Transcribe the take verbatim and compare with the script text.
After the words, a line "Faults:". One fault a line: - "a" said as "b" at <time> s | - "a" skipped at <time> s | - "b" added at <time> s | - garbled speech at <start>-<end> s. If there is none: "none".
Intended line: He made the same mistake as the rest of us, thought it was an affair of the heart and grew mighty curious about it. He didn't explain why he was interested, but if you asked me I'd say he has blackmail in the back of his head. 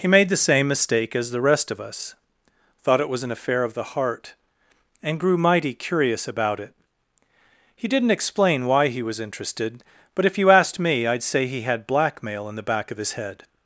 He made the same mistake as the rest of us, thought it was an affair of the heart and grew mighty curious about it. He didn't explain why he was interested, but if you asked me I'd say he had blackmail in the back of his head.
Faults:
- "has" said as "had" at 11.6 s